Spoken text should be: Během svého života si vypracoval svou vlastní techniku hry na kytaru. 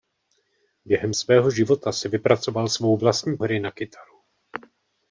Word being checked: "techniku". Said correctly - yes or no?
no